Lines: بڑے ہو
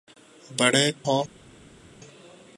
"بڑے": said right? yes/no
yes